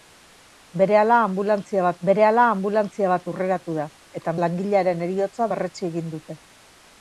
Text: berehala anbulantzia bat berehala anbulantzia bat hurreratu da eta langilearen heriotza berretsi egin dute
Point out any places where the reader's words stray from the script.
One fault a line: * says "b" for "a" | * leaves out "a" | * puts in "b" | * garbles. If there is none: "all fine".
all fine